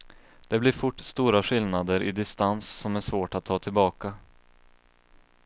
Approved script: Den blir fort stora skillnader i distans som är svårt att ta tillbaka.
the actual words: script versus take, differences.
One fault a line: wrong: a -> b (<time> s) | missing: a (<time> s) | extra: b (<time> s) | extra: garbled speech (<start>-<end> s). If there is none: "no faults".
wrong: Den -> Det (0.5 s)